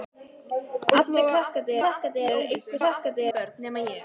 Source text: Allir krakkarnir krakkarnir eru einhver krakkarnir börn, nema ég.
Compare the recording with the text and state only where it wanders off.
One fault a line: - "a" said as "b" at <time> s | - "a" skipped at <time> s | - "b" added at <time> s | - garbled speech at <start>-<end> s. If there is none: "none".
none